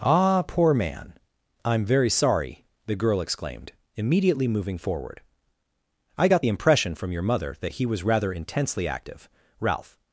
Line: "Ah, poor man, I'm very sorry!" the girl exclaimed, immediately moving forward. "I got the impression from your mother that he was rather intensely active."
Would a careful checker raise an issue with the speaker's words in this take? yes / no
yes